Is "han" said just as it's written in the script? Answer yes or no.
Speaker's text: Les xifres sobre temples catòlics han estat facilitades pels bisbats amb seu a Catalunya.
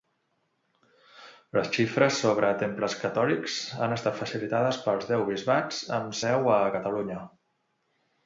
yes